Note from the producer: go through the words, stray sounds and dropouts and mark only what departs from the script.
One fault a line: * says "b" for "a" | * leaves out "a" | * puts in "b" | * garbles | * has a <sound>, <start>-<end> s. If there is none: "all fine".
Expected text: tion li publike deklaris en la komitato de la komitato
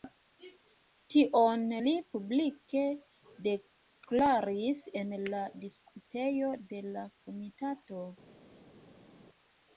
* says "diskutejo" for "komitato"